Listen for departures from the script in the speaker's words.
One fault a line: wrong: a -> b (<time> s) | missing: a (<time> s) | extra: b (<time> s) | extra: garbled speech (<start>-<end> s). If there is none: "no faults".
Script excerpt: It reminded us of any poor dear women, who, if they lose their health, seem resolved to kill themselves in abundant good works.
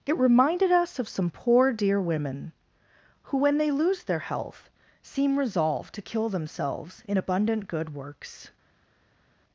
wrong: any -> some (1.1 s)
wrong: if -> when (3.4 s)